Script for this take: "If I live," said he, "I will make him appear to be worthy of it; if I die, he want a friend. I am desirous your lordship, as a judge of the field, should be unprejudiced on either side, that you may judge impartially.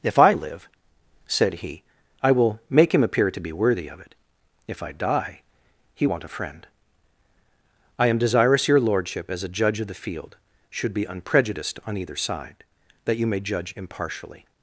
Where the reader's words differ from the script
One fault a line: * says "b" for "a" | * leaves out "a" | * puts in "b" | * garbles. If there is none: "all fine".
all fine